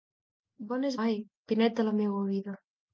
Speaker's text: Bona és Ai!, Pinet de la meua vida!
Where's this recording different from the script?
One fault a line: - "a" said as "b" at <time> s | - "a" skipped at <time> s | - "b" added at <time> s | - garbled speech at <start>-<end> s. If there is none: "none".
none